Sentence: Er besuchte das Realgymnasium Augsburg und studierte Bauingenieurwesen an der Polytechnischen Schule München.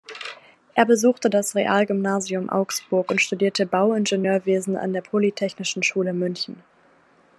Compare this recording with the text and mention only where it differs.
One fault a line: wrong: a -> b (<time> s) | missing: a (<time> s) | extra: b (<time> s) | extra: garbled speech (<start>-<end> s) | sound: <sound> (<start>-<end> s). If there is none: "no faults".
no faults